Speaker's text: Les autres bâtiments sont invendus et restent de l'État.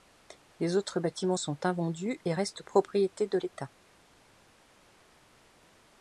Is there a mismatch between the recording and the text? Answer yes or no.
yes